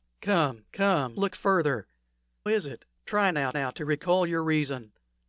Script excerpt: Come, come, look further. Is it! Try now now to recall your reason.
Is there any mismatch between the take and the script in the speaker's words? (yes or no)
no